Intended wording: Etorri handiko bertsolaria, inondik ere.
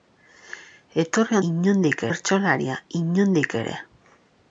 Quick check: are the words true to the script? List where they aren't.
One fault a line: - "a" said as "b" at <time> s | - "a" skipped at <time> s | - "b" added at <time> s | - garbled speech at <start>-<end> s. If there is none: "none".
- "handiko" said as "inondik" at 1.5 s